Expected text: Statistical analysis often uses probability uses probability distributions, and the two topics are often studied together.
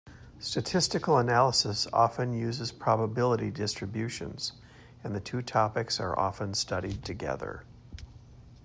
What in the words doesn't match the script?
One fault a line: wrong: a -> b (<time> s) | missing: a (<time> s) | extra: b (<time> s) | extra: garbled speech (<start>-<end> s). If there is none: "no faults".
missing: uses probability (3.5 s)